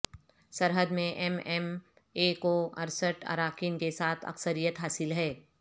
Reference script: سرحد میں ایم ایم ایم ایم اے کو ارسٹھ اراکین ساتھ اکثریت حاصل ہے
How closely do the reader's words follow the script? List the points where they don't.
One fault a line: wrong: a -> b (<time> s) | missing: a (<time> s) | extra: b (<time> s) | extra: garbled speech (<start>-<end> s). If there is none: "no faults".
missing: ایم ایم (1.7 s)
extra: کے (3.8 s)